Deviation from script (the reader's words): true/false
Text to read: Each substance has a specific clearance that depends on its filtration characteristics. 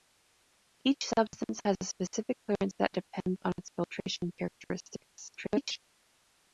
true